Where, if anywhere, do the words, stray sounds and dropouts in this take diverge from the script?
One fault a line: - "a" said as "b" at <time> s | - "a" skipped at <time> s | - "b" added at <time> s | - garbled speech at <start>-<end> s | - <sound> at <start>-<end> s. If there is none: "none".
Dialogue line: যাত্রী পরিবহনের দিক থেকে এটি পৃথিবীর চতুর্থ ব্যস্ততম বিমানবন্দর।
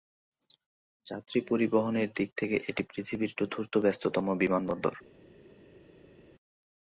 none